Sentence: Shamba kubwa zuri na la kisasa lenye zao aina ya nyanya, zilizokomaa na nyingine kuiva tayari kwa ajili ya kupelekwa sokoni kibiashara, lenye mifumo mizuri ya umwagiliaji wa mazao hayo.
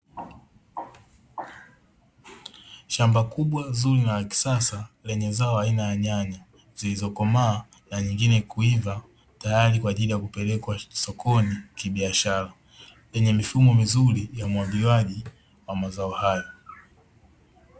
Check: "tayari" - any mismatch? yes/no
no